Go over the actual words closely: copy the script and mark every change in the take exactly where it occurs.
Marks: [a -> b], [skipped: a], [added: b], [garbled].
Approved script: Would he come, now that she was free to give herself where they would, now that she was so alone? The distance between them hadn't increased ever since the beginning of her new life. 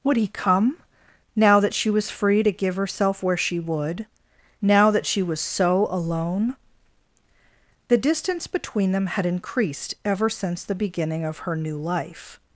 Would he come, now that she was free to give herself where [they -> she] would, now that she was so alone? The distance between them [hadn't -> had] increased ever since the beginning of her new life.